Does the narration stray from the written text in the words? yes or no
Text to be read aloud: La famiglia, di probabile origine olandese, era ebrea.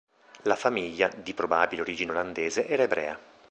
no